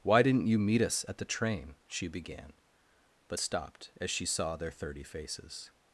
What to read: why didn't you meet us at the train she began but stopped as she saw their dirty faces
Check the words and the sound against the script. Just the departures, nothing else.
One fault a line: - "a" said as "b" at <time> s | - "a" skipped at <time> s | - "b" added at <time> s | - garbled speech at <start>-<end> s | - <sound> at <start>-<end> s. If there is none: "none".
- "dirty" said as "thirty" at 4.7 s